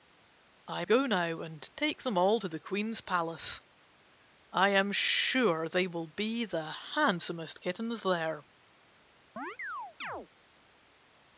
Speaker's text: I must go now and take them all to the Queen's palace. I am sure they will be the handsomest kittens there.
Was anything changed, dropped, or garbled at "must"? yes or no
yes